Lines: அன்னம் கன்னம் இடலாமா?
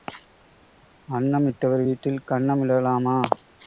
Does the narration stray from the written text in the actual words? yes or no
yes